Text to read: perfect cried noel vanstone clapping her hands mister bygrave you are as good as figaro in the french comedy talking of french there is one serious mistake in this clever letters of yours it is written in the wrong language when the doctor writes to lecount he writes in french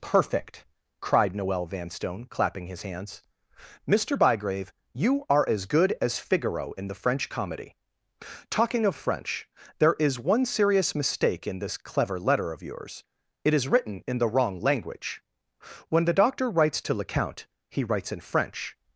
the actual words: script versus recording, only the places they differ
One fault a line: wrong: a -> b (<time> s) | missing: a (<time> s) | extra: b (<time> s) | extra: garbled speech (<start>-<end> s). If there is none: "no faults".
wrong: her -> his (2.6 s)
wrong: letters -> letter (12.2 s)